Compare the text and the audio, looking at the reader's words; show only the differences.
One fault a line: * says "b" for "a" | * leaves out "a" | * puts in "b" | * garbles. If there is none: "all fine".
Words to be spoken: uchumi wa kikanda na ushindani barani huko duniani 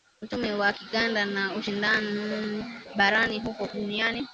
all fine